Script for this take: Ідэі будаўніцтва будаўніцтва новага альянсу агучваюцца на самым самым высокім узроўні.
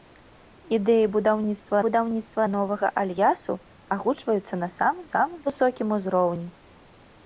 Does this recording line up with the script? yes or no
yes